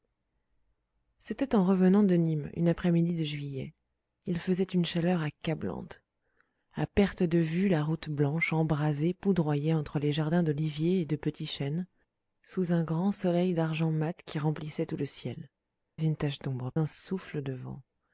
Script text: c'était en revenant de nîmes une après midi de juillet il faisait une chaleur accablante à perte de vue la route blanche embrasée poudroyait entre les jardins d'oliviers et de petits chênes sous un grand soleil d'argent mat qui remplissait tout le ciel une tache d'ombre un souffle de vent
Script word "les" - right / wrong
right